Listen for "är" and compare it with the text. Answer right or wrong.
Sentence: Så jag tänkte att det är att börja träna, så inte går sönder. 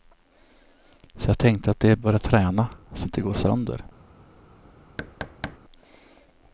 right